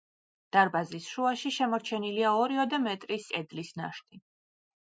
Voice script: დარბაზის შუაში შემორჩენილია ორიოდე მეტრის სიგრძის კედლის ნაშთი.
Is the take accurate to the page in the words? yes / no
no